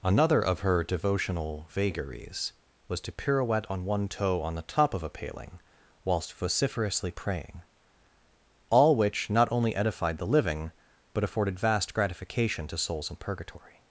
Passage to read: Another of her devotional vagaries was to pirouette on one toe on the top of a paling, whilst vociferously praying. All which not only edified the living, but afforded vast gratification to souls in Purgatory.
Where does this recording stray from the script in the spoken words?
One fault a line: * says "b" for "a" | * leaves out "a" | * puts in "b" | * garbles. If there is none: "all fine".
all fine